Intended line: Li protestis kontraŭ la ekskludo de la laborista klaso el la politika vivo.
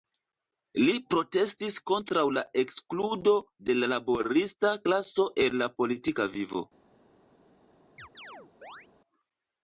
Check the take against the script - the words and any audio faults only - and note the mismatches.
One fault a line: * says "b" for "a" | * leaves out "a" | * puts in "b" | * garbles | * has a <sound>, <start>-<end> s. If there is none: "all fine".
* has a chirp, 8.0-8.9 s